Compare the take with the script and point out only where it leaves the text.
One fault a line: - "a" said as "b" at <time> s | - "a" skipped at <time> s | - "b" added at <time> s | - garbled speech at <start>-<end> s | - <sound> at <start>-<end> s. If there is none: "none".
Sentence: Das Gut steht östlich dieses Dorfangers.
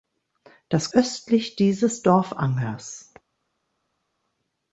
- "Gut steht" skipped at 0.9 s